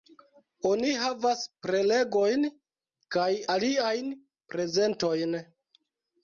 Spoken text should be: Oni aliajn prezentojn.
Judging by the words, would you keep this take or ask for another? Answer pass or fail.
fail